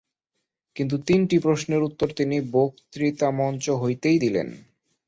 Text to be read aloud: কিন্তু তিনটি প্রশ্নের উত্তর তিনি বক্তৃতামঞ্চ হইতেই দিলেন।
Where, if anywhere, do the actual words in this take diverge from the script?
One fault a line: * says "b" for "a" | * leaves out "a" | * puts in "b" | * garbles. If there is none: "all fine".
all fine